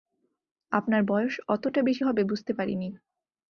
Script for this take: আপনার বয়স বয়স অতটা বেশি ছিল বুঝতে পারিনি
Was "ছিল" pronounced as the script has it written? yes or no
no